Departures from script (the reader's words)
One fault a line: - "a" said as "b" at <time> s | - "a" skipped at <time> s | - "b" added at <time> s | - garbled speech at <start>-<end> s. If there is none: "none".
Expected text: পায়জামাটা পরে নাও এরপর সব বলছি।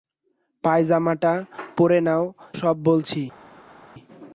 - "এরপর" skipped at 2.2 s